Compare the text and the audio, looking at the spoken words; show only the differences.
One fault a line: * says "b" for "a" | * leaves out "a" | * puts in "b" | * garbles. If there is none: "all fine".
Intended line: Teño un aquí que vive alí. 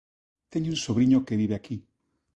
* says "sobriño" for "aquí"
* says "aquí" for "alí"